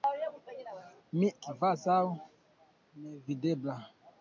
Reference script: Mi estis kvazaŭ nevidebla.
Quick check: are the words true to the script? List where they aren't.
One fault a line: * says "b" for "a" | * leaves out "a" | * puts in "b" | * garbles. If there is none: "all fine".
* leaves out "estis"